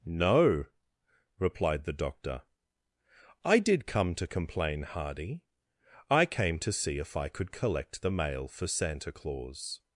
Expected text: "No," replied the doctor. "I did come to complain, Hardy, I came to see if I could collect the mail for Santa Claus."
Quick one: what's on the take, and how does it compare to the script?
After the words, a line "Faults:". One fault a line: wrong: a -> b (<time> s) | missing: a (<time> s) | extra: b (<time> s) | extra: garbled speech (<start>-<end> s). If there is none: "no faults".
"No," replied the doctor. "I did come to complain, Hardy, I came to see if I could collect the mail for Santa Claus."
Faults:
no faults